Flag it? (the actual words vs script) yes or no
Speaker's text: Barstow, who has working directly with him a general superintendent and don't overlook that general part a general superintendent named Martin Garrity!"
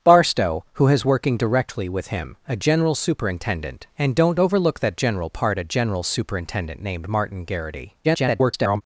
yes